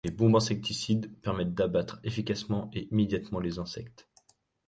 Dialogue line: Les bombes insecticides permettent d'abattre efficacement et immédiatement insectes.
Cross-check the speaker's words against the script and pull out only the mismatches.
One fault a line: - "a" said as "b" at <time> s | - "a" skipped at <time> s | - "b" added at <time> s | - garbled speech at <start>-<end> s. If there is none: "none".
- "les" added at 3.4 s